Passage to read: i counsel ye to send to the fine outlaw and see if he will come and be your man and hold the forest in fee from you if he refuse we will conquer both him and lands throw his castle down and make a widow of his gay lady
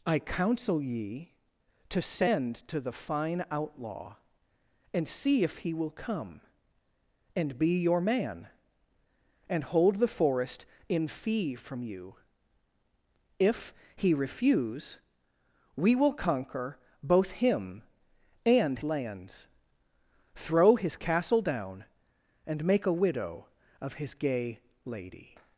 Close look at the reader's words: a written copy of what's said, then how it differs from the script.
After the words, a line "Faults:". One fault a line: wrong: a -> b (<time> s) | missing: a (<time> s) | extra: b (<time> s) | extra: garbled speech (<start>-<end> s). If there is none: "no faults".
i counsel ye to send to the fine outlaw and see if he will come and be your man and hold the forest in fee from you if he refuse we will conquer both him and lands throw his castle down and make a widow of his gay lady
Faults:
no faults